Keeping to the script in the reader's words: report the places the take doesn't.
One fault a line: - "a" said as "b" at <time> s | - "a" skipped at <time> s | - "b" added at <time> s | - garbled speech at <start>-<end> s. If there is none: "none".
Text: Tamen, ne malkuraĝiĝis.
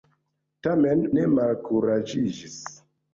none